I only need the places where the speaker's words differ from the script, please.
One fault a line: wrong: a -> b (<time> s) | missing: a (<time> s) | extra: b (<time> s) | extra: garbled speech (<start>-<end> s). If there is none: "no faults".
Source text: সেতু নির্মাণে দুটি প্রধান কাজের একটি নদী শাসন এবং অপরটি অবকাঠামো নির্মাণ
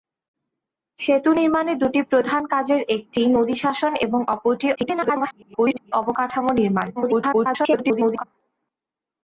extra: garbled speech (4.7-5.9 s)
extra: garbled speech (7.0-8.2 s)